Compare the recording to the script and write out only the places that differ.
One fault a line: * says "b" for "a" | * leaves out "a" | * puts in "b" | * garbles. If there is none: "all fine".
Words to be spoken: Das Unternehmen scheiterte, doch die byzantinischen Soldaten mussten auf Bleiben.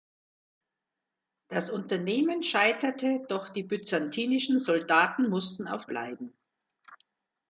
all fine